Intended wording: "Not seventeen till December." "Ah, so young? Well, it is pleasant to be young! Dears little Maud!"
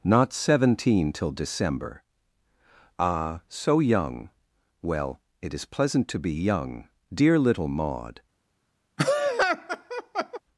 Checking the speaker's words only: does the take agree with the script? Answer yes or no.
no